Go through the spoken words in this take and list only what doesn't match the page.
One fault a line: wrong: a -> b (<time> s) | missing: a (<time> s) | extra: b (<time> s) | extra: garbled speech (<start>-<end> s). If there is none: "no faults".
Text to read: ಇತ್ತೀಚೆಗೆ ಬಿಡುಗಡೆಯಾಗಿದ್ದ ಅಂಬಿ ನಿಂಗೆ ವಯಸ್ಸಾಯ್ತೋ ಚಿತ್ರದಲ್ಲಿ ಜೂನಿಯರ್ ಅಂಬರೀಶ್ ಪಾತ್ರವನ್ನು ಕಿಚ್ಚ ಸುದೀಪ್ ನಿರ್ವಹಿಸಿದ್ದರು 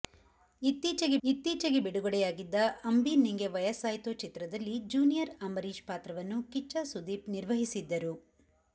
extra: ಇತ್ತೀಚೆಗೆ (1.2 s)